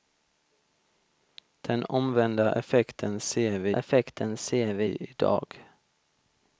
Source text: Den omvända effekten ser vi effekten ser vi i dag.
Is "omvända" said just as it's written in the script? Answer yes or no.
yes